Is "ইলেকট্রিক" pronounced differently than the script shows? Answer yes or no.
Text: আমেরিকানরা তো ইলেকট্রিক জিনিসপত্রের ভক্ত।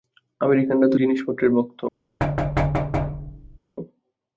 yes